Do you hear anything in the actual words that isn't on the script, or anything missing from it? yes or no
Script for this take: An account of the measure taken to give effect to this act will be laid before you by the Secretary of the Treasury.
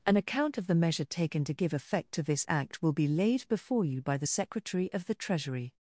no